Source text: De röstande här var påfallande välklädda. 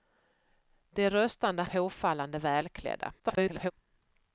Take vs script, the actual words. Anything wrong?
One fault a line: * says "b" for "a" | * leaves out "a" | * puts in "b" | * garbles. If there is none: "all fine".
* leaves out "här var"
* garbles